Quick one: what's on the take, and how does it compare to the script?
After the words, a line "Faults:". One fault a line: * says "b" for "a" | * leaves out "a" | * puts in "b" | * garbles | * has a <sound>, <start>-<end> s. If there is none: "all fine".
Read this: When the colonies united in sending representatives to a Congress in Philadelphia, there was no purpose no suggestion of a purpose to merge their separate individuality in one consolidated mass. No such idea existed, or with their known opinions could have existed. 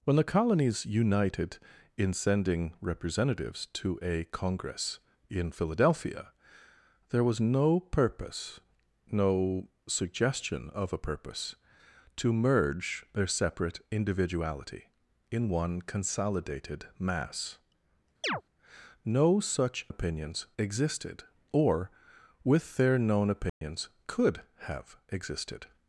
When the colonies united in sending representatives to a Congress in Philadelphia, there was no purpose no suggestion of a purpose to merge their separate individuality in one consolidated mass. No such opinions existed, or with their known opinions could have existed.
Faults:
* has a chirp, 18.2-18.4 s
* says "opinions" for "idea"
* has a dropout, 23.5-23.6 s